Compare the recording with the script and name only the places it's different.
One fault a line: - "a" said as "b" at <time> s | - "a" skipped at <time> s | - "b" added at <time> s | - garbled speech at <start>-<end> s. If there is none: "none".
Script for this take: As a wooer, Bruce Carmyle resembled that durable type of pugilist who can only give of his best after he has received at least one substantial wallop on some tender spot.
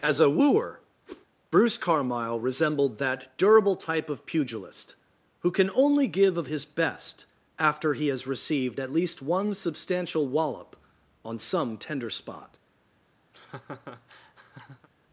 none